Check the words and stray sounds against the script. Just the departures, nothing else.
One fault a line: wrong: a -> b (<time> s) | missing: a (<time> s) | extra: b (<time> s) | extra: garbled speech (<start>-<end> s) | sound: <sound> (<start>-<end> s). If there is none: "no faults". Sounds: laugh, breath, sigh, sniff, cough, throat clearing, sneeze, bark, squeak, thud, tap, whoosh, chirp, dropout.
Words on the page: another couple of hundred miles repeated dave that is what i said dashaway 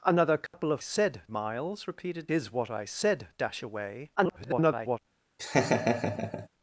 sound: dropout (0.5-0.5 s)
wrong: hundred -> said (0.8 s)
missing: dave that (2.3 s)
extra: garbled speech (4.2-5.0 s)
sound: laugh (5.4-6.5 s)